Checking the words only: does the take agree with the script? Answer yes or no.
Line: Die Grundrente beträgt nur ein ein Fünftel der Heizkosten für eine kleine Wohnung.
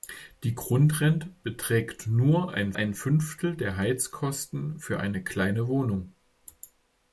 yes